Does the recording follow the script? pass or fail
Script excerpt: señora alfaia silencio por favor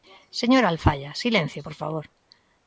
pass